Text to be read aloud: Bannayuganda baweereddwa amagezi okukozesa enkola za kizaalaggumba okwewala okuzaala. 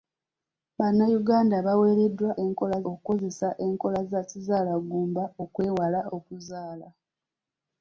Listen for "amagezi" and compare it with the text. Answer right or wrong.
wrong